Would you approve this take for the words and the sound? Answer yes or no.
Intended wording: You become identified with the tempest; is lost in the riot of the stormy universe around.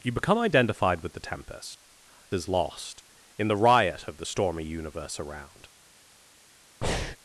no